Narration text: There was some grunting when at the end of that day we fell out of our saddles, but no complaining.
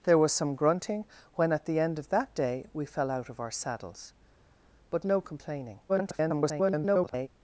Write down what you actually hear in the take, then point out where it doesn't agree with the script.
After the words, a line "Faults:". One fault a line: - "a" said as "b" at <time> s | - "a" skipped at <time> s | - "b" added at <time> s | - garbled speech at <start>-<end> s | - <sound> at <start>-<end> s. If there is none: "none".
There was some grunting when at the end of that day we fell out of our saddles, but no complaining. [garbled]
Faults:
- garbled speech at 5.9-7.3 s